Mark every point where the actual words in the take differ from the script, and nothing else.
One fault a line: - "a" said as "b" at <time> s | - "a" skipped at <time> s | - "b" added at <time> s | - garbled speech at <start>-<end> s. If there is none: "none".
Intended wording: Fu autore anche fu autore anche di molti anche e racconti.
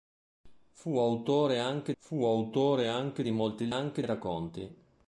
none